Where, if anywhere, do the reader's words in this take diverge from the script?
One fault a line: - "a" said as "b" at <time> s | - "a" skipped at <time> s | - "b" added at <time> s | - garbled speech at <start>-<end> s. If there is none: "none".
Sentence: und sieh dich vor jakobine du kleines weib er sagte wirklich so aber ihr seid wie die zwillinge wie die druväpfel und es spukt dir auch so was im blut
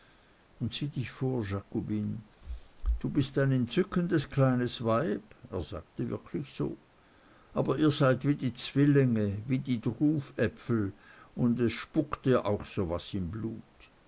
- "bist ein entzückendes" added at 3.1 s